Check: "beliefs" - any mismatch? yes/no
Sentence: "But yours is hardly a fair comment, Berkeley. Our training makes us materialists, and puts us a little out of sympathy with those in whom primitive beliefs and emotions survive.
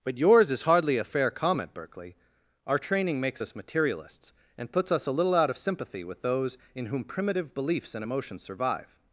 no